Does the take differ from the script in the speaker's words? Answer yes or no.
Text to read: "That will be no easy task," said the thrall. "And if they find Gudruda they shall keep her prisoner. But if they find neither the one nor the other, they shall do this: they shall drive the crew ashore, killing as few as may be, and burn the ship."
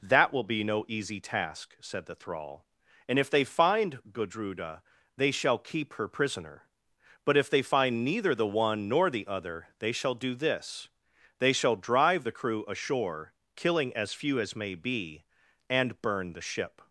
no